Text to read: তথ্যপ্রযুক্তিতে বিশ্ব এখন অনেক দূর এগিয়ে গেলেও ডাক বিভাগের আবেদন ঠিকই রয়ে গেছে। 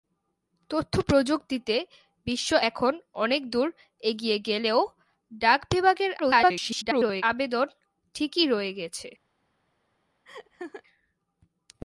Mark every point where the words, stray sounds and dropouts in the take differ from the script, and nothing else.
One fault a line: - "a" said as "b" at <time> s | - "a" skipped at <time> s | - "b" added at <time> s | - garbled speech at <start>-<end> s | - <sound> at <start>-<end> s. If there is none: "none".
- garbled speech at 6.2-7.2 s
- laugh at 10.3-10.8 s